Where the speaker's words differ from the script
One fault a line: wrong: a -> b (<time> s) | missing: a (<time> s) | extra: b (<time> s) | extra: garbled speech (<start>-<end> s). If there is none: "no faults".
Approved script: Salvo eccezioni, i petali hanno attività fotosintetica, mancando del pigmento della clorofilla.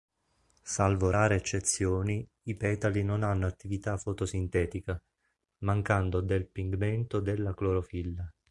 extra: rare (1.1 s)
extra: non (3.0 s)